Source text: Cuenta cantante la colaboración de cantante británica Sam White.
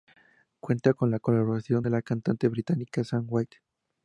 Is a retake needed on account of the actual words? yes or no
yes